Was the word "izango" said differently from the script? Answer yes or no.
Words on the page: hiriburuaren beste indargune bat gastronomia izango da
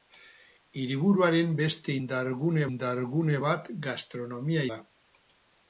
yes